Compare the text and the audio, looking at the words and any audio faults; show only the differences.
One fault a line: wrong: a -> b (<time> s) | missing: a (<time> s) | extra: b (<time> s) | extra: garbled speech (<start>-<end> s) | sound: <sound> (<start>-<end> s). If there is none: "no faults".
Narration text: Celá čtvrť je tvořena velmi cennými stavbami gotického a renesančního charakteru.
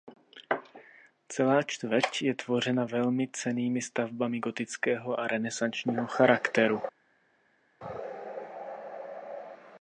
no faults